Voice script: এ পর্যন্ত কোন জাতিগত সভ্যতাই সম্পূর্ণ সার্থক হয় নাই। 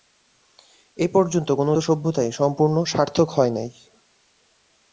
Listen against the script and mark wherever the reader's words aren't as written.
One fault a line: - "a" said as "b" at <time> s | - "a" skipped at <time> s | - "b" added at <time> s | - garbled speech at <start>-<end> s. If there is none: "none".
- "জাতিগত" skipped at 1.7 s